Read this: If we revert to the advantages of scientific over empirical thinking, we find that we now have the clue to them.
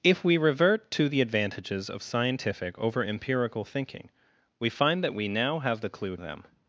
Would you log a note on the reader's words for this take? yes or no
yes